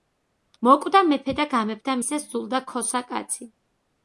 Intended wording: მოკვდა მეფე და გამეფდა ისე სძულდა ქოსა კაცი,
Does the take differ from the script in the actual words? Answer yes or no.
no